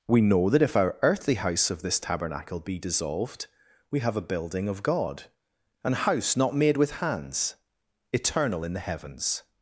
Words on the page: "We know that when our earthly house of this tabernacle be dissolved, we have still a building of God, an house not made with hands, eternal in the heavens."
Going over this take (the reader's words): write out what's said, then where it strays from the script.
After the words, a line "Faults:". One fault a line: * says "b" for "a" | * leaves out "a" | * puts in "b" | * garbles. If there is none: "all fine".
"We know that if our earthly house of this tabernacle be dissolved, we have a building of God, an house not made with hands, eternal in the heavens."
Faults:
* says "if" for "when"
* leaves out "still"